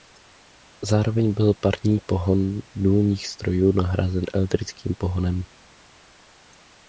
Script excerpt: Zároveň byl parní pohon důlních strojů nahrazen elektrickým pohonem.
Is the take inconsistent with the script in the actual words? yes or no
no